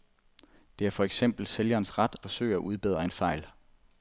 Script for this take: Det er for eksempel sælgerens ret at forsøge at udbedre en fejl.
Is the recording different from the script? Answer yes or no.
yes